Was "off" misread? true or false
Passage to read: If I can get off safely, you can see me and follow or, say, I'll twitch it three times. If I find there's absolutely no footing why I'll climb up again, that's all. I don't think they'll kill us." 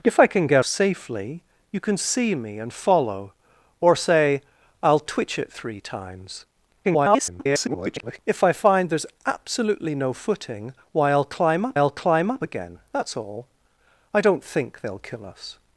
true